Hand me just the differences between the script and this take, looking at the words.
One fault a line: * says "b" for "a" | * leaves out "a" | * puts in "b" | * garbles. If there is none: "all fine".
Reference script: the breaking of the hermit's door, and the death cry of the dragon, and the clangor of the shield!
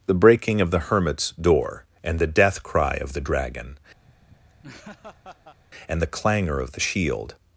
all fine